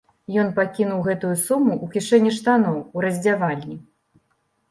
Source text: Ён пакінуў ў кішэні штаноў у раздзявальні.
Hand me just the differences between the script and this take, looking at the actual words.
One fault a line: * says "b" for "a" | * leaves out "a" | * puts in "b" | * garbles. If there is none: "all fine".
* puts in "гэтую суму"